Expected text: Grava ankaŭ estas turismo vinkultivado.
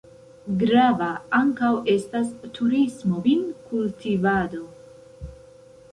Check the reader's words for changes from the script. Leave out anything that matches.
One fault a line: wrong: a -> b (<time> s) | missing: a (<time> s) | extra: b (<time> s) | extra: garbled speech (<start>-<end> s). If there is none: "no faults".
no faults